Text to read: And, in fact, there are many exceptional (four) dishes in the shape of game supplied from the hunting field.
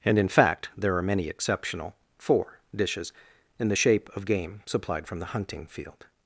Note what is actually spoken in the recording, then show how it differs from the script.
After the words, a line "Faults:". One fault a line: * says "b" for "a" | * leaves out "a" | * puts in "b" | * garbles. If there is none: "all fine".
And, in fact, there are many exceptional (four) dishes in the shape of game supplied from the hunting field.
Faults:
all fine